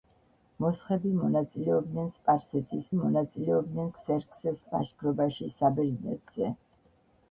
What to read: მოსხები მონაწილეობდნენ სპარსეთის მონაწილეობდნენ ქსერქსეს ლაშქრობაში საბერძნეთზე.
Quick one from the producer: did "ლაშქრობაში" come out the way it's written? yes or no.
yes